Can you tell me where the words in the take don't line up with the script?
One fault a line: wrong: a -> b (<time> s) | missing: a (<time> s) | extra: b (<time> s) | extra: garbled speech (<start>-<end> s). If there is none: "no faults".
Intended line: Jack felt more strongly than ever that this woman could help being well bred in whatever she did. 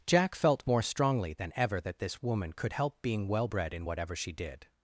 no faults